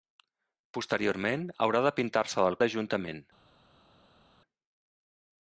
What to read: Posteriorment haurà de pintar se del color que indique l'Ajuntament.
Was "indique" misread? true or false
true